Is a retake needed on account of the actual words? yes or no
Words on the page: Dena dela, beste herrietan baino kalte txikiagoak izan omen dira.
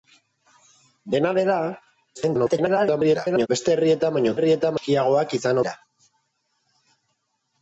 yes